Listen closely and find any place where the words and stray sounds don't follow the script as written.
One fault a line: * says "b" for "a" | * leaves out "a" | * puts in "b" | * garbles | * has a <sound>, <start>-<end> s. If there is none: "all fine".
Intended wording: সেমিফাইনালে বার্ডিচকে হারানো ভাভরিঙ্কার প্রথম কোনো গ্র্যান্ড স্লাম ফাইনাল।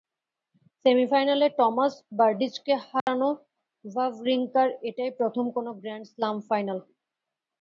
* puts in "টমাস"
* has a dropout, 3.0-3.1 s
* puts in "এটাই"